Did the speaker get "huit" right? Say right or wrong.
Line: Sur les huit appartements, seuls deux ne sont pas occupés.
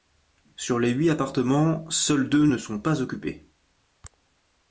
right